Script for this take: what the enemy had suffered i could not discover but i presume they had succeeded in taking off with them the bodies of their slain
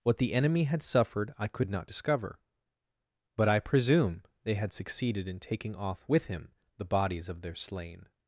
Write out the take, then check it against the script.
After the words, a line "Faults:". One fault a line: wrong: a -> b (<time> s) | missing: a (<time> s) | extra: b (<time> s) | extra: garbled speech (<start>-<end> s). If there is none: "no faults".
what the enemy had suffered i could not discover but i presume they had succeeded in taking off with him the bodies of their slain
Faults:
wrong: them -> him (6.3 s)